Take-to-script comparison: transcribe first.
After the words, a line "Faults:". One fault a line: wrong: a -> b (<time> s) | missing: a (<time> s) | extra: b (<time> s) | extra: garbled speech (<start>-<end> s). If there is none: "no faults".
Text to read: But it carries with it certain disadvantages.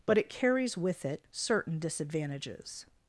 But it carries with it certain disadvantages.
Faults:
no faults